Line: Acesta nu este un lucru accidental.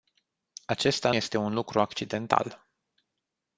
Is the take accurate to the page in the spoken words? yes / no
no